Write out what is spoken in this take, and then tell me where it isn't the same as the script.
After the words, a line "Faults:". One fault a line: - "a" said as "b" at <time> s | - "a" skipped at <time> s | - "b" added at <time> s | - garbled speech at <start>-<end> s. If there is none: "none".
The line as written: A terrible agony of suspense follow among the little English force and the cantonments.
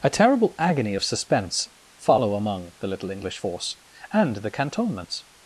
A terrible agony of suspense follow among the little English force and the cantonments.
Faults:
none